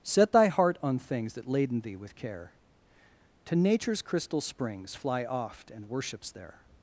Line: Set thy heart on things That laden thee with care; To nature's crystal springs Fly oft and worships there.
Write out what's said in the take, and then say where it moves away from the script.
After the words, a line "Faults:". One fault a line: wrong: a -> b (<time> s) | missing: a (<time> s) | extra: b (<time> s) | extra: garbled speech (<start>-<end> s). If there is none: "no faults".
Set thy heart on things That laden thee with care; To nature's crystal springs Fly oft and worships there.
Faults:
no faults